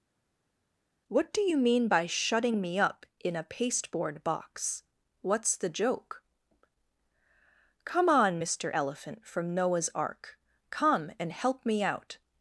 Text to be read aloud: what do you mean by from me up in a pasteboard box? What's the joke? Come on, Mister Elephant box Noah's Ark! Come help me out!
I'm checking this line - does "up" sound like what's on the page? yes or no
yes